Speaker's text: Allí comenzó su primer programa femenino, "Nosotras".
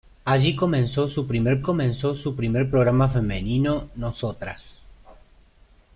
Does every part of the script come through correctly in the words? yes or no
no